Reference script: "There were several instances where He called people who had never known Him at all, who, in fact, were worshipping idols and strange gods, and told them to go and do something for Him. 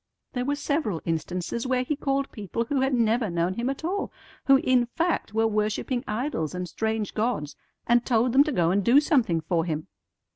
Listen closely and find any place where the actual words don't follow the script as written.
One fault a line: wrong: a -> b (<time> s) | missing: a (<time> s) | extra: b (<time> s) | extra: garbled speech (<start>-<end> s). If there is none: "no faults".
no faults